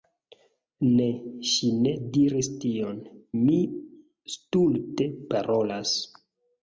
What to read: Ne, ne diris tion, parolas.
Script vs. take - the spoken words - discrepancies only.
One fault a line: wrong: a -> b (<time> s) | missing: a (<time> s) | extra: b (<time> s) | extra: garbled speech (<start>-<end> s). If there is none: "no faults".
extra: ŝi (1.5 s)
extra: mi stulte (3.4 s)